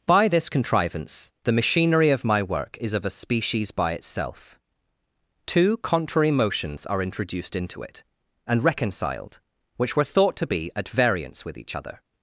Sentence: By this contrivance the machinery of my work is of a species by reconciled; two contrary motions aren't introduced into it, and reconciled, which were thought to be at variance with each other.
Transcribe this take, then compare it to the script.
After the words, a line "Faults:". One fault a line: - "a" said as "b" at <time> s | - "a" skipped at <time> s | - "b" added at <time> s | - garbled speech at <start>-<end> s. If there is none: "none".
By this contrivance the machinery of my work is of a species by itself; two contrary motions are introduced into it, and reconciled, which were thought to be at variance with each other.
Faults:
- "reconciled" said as "itself" at 3.9 s
- "aren't" said as "are" at 6.8 s